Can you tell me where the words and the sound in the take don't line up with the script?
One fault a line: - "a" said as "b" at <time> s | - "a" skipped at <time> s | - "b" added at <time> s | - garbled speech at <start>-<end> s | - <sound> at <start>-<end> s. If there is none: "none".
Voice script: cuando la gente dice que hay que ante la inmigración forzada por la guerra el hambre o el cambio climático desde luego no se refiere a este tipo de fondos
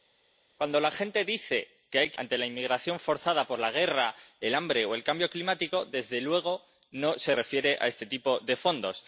none